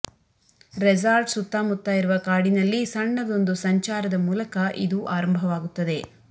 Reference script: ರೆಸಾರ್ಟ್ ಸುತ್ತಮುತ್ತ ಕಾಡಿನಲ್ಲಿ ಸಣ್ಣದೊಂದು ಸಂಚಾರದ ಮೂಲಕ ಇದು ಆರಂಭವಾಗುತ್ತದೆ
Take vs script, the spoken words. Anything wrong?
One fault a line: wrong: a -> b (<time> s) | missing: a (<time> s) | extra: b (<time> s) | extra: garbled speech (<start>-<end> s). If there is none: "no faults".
extra: ಇರುವ (1.9 s)